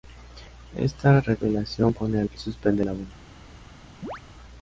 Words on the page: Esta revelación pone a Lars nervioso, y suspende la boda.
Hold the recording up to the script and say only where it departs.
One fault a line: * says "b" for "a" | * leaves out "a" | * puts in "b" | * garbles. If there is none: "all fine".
* leaves out "Lars nervioso"